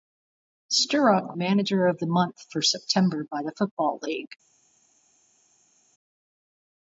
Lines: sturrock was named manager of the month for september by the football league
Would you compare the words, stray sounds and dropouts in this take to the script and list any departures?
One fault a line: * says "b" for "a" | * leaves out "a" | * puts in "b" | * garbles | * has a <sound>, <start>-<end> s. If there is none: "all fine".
* leaves out "was named"